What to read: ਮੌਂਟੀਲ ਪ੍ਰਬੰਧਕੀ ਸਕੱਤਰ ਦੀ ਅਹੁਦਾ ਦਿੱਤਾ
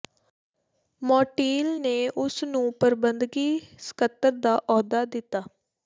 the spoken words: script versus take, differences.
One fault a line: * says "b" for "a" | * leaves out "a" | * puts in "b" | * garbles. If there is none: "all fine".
* puts in "ਨੇ ਉਸ ਨੂੰ"
* says "ਦਾ" for "ਦੀ"